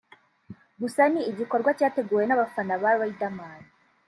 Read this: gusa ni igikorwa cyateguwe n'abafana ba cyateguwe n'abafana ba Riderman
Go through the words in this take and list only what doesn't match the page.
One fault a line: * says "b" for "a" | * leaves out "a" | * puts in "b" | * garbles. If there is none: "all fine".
* leaves out "cyateguwe n'abafana ba"